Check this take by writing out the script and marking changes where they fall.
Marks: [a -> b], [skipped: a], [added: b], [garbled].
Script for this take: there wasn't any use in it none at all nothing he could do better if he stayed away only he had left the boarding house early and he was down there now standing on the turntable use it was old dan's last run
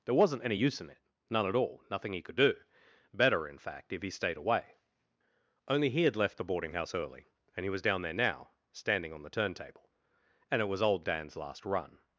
there wasn't any use in it none at all nothing he could do better [added: in fact] if he stayed away only he had left the boarding house early and he was down there now standing on the turntable [use -> and] it was old dan's last run